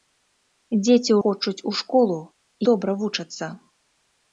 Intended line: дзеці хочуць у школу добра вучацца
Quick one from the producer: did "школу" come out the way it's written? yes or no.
yes